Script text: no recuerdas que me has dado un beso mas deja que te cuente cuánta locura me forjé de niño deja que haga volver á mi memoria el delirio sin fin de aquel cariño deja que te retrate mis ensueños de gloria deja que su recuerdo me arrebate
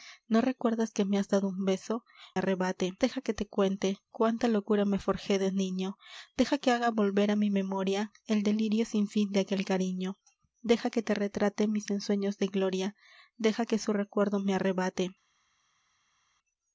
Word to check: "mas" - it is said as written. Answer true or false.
false